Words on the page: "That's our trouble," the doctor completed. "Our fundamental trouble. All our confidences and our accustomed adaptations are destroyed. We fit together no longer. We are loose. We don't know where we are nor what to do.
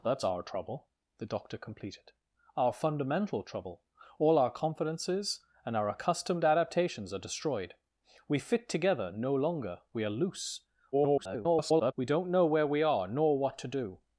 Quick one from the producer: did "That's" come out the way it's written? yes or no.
yes